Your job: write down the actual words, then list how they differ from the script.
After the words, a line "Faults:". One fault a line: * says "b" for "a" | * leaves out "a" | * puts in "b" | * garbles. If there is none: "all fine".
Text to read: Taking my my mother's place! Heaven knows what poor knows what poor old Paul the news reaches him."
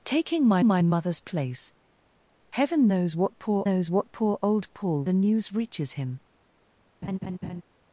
Taking my my mother's place! Heaven knows what poor knows what poor old Paul the news reaches him."
Faults:
all fine